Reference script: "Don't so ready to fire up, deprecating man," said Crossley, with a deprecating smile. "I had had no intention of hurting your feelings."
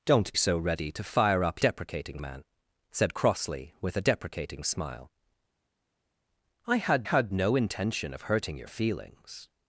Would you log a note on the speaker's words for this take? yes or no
no